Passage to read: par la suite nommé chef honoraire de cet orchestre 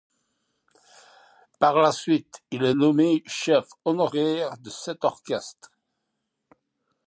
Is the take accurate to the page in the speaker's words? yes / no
no